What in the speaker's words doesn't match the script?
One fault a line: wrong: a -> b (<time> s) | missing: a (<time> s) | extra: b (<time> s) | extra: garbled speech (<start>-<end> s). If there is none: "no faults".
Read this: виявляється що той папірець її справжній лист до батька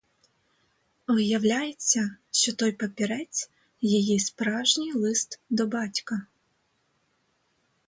no faults